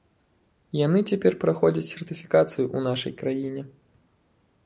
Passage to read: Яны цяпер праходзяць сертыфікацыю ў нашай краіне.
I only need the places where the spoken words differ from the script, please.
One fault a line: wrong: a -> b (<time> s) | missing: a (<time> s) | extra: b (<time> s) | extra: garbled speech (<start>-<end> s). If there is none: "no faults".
no faults